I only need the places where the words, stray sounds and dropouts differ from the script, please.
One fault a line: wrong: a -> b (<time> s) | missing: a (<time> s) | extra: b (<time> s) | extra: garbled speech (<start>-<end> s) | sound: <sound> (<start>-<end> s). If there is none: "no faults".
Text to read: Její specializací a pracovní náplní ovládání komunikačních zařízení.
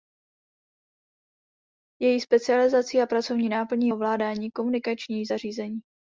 no faults